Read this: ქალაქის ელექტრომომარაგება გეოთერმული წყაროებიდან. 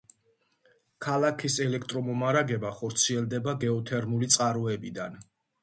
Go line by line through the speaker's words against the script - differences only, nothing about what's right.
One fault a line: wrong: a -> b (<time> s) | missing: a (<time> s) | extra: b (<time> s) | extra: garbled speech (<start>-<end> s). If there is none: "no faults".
extra: ხორციელდება (2.8 s)